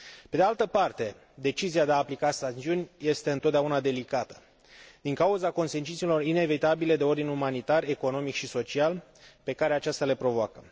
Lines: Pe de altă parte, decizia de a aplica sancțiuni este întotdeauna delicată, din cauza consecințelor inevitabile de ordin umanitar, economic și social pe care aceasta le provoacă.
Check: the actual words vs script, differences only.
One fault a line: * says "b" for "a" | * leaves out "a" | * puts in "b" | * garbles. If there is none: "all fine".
all fine